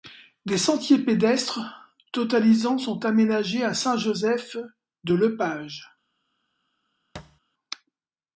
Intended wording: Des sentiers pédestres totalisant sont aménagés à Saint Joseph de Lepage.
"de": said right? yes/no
yes